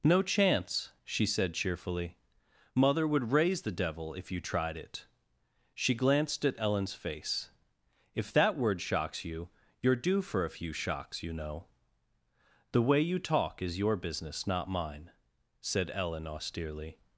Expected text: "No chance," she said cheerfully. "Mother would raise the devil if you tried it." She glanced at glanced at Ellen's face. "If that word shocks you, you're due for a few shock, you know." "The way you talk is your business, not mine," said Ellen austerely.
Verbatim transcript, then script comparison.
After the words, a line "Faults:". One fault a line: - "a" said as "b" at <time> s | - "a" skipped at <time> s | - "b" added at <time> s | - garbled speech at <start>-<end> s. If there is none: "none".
"No chance," she said cheerfully. "Mother would raise the devil if you tried it." She glanced at Ellen's face. "If that word shocks you, you're due for a few shocks, you know." "The way you talk is your business, not mine," said Ellen austerely.
Faults:
- "glanced at" skipped at 6.6 s
- "shock" said as "shocks" at 10.7 s